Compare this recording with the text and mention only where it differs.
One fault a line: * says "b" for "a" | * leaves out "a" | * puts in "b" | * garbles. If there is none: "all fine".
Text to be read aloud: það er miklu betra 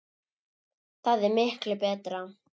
all fine